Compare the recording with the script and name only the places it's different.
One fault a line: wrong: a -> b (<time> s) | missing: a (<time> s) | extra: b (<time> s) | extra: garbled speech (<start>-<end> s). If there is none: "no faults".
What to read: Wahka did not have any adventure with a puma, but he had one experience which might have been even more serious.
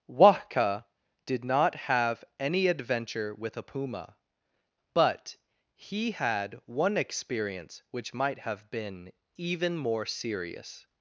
no faults